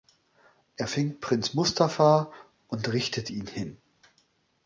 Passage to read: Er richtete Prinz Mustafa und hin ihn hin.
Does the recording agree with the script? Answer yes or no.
no